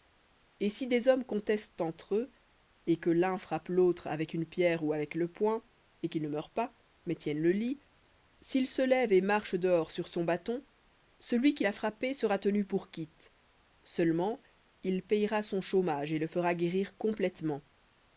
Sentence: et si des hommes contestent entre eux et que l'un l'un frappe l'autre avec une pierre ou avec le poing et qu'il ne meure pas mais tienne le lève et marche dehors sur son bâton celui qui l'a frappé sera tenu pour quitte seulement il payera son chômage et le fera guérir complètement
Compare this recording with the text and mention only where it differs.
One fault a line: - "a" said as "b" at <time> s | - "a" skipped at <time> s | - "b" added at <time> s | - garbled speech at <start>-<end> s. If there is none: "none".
- "l'un" skipped at 3.4 s
- "lit sil se" added at 7.5 s